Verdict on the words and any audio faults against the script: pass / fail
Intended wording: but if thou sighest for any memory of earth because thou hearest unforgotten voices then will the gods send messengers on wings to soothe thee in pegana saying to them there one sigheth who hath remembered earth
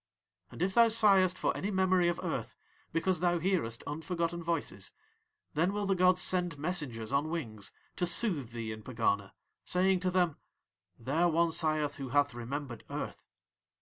fail